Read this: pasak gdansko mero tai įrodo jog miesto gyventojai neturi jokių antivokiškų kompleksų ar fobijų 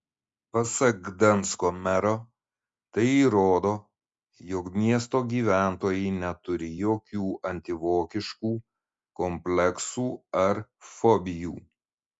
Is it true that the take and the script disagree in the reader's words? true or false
false